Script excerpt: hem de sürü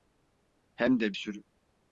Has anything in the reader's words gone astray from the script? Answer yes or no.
no